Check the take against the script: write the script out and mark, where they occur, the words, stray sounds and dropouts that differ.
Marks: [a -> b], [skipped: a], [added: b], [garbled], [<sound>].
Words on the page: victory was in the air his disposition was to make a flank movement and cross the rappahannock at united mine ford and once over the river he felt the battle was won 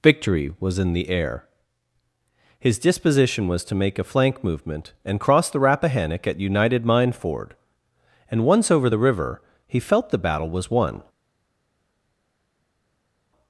victory was in the air his disposition was to make a flank movement and cross the rappahannock at united mine ford and once over the river he felt the battle was won